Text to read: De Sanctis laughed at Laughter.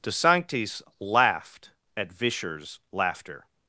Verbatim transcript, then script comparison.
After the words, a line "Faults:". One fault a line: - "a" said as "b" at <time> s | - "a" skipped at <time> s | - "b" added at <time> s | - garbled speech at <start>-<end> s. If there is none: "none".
De Sanctis laughed at Vischer's laughter.
Faults:
- "Vischer's" added at 2.1 s